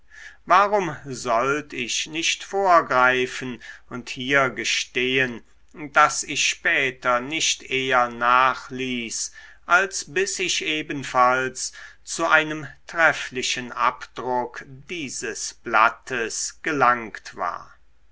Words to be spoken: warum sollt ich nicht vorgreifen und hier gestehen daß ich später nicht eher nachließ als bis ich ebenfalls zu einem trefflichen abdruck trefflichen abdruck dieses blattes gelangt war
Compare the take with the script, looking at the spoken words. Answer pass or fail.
fail